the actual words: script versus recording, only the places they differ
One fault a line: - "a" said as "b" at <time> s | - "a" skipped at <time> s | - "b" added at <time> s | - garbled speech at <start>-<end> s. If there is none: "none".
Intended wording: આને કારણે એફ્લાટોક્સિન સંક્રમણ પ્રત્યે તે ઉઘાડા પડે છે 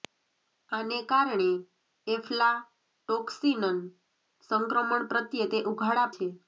- "પડે" skipped at 6.1 s